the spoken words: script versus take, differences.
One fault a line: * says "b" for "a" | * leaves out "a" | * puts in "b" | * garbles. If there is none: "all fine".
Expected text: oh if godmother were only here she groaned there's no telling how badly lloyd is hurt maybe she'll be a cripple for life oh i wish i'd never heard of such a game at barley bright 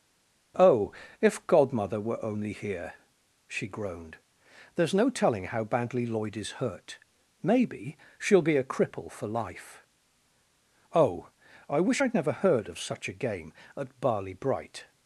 all fine